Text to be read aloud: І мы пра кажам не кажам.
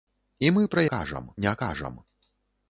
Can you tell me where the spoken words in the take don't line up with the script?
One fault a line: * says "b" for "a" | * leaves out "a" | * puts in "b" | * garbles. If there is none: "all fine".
all fine